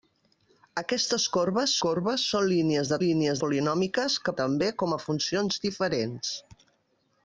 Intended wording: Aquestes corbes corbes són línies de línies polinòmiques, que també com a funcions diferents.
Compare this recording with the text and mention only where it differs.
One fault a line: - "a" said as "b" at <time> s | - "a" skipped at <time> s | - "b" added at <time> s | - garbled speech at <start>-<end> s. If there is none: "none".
none